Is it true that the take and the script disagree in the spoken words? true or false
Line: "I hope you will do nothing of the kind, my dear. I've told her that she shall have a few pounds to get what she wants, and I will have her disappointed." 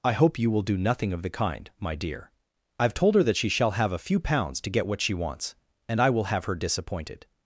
false